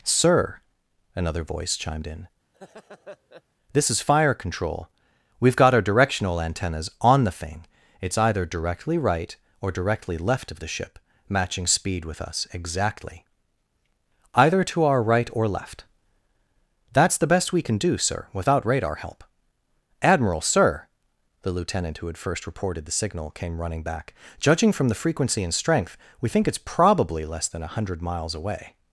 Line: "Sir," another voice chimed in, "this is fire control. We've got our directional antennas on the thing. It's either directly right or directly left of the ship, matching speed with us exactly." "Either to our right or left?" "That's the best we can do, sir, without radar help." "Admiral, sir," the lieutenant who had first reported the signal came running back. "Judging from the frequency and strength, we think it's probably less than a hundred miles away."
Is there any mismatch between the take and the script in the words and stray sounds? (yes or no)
yes